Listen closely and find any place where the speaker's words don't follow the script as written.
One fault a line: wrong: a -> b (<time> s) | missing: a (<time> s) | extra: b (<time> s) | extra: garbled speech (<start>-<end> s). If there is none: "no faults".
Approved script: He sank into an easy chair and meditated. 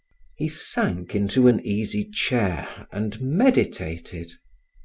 no faults